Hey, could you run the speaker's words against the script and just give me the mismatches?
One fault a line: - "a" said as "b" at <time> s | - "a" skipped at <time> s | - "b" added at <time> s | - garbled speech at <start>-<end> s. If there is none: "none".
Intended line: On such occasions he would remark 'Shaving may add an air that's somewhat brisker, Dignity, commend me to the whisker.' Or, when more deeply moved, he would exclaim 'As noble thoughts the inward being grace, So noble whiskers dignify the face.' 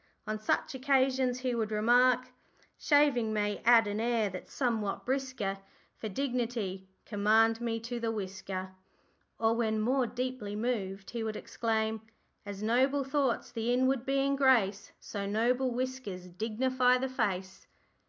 - "For" added at 5.9 s